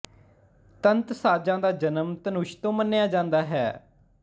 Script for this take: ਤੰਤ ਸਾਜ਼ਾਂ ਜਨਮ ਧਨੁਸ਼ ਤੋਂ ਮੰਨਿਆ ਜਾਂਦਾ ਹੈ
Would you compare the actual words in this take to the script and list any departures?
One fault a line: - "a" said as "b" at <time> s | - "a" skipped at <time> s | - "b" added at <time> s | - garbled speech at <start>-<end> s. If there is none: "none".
- "ਦਾ" added at 1.6 s